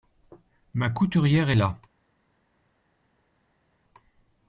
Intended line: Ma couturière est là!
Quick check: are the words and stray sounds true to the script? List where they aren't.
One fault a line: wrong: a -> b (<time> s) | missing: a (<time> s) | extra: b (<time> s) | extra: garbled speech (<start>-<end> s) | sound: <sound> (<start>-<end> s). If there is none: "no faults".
no faults